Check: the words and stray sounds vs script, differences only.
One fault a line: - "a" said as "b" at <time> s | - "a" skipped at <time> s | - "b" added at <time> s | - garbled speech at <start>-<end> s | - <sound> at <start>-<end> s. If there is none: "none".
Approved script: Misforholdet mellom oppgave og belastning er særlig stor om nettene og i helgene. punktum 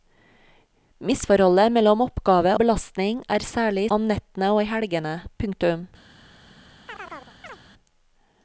- "og" skipped at 2.5 s
- "stor" skipped at 3.9 s
- chirp at 6.9-7.6 s